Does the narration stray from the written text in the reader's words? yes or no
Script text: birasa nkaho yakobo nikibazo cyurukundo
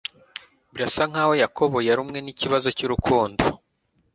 yes